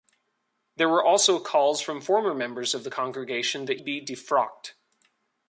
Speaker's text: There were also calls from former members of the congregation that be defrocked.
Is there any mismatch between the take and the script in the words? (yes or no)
no